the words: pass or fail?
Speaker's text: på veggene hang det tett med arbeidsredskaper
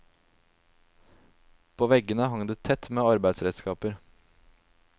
pass